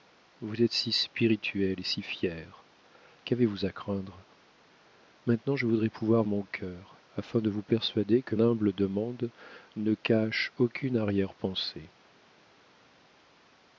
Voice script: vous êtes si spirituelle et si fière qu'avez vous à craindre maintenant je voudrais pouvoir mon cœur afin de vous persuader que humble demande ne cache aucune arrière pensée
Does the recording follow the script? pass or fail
pass